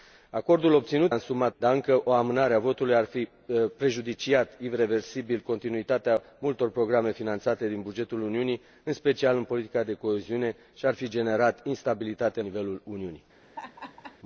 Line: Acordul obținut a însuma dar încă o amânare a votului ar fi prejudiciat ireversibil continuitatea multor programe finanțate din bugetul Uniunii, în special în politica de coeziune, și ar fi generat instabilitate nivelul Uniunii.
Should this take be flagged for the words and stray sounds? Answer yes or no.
yes